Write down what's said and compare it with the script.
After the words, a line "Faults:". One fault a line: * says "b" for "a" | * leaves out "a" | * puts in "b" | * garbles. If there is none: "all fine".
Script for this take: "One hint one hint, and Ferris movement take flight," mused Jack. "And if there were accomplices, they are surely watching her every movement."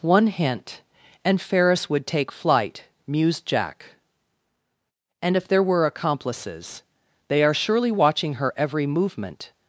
"One hint, and Ferris would take flight," mused Jack. "And if there were accomplices, they are surely watching her every movement."
Faults:
* leaves out "one hint"
* says "would" for "movement"